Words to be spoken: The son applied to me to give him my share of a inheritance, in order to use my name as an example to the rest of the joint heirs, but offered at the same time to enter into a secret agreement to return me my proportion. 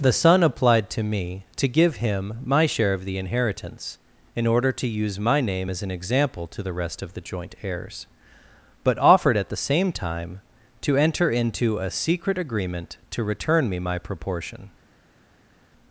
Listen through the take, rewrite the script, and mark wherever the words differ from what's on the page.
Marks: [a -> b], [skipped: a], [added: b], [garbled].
The son applied to me to give him my share of [a -> the] inheritance, in order to use my name as an example to the rest of the joint heirs, but offered at the same time to enter into a secret agreement to return me my proportion.